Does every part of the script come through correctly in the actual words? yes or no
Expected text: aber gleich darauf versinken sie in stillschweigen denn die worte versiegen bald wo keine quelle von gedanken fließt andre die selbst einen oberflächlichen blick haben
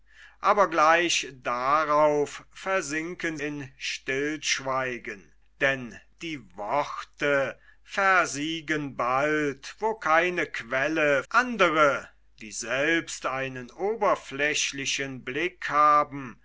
no